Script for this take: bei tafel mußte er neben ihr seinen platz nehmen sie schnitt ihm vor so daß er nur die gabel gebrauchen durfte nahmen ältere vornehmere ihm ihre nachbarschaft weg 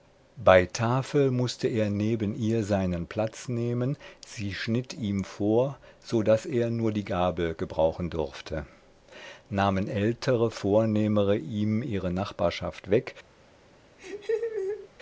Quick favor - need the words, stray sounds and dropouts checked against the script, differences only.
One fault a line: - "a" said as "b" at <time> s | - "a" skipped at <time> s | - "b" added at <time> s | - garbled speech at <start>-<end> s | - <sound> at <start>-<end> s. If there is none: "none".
- laugh at 14.0-14.9 s